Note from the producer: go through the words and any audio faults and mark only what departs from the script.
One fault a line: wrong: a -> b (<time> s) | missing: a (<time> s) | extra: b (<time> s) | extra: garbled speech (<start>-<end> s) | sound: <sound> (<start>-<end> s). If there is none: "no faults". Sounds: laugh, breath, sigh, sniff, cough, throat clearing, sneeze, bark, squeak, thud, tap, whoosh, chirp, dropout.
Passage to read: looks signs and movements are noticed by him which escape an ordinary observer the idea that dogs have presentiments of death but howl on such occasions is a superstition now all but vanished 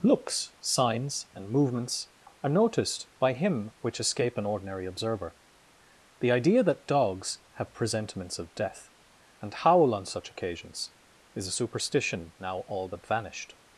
wrong: but -> and (9.4 s)